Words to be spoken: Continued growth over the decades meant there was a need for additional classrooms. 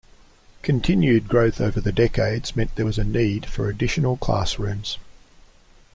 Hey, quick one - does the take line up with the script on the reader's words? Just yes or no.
yes